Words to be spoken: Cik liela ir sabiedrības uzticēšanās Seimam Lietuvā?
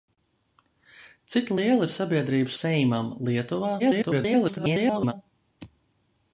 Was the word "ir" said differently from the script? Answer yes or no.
no